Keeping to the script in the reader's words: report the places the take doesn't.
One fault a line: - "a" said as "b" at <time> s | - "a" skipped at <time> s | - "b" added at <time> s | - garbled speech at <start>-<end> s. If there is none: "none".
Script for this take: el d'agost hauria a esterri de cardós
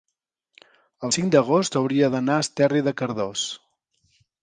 - "cinc" added at 1.1 s
- "d'anar" added at 2.2 s